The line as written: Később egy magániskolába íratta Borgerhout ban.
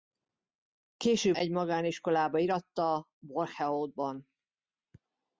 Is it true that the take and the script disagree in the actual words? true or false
false